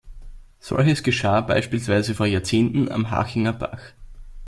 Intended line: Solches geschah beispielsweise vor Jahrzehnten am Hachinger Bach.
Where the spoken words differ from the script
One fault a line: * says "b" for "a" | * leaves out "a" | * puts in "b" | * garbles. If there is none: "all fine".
all fine